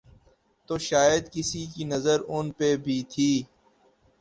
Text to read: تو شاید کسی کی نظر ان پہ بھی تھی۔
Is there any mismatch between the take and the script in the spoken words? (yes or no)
no